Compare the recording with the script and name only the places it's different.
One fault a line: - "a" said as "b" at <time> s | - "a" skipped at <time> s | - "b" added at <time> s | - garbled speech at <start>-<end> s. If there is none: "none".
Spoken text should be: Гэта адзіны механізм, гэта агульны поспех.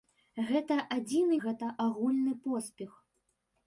- "механізм" skipped at 1.4 s